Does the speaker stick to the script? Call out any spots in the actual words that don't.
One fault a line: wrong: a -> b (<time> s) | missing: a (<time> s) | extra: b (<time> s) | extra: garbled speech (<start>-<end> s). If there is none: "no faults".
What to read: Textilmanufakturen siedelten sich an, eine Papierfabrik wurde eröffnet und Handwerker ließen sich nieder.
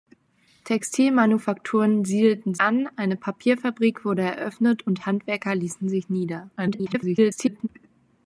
missing: sich (2.5 s)
extra: garbled speech (6.6-7.7 s)